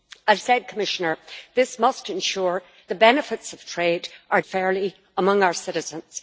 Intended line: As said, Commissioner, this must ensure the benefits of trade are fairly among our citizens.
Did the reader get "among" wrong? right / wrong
right